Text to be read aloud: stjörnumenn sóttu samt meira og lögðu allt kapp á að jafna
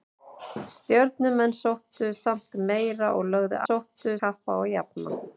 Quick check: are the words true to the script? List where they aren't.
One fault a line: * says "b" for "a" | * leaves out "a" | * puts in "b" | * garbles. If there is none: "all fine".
* says "sóttu" for "allt"